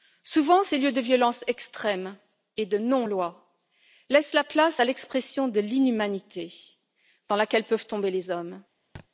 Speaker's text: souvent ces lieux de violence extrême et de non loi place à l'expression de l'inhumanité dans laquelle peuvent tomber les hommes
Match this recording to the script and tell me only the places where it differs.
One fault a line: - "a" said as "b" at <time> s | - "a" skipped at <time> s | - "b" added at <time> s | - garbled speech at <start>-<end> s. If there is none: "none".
- "laissent la" added at 4.1 s